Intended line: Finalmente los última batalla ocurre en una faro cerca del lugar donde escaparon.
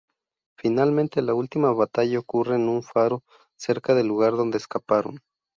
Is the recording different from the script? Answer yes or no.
yes